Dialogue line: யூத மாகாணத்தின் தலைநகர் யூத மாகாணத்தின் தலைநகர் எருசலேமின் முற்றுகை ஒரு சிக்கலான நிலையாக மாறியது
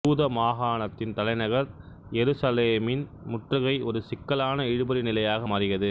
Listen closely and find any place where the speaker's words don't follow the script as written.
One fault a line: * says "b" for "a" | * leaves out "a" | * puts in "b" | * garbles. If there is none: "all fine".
* leaves out "யூத மாகாணத்தின் தலைநகர்"
* puts in "இழுபறி"